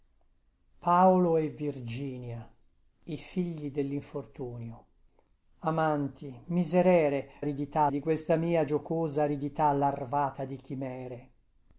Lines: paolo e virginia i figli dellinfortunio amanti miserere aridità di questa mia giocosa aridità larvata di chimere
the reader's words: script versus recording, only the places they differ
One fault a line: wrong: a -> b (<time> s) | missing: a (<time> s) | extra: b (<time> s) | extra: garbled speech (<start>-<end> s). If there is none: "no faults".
no faults